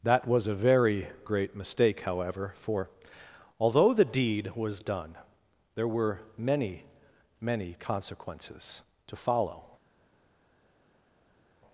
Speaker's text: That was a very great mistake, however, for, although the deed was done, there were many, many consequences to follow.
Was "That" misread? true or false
false